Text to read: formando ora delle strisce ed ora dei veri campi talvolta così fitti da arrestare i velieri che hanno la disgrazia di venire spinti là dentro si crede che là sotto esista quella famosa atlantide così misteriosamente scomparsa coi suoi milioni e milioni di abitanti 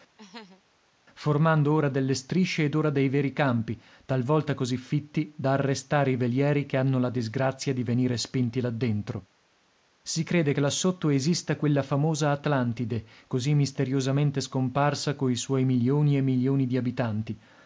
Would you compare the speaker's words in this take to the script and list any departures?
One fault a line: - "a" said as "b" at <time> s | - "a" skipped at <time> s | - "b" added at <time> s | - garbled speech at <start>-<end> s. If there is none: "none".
none